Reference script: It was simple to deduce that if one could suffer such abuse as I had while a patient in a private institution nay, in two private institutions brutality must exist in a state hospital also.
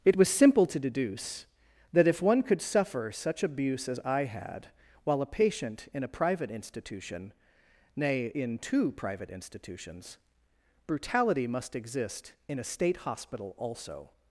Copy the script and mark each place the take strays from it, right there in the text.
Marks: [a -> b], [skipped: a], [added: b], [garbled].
It was simple to deduce that if one could suffer such abuse as I had while a patient in a private institution nay, in two private institutions brutality must exist in a state hospital also.